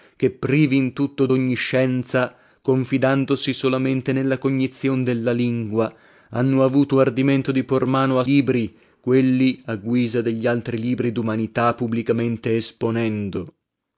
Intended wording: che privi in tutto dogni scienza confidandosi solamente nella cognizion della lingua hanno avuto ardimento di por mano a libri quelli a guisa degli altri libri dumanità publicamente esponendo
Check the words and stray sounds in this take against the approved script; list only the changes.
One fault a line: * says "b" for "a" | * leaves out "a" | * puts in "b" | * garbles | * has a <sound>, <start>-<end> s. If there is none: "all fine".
all fine